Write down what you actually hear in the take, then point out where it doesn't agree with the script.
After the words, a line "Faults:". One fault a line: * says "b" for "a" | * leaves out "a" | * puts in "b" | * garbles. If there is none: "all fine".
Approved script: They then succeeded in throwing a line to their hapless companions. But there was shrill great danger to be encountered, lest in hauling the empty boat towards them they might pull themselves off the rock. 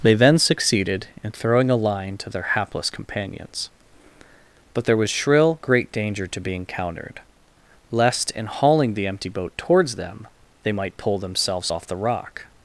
They then succeeded in throwing a line to their hapless companions. But there was shrill great danger to be encountered, lest in hauling the empty boat towards them they might pull themselves off the rock.
Faults:
all fine